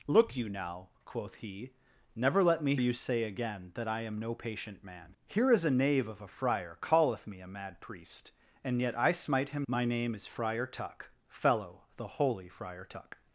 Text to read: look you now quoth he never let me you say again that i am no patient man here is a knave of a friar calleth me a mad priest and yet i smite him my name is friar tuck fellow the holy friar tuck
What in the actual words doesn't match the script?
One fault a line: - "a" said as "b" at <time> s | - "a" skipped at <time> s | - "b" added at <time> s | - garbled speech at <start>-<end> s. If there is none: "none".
none